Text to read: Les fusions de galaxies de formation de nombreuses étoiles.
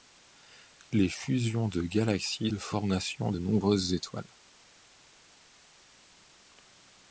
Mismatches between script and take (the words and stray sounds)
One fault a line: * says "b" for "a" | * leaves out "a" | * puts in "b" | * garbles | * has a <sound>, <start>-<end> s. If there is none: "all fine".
all fine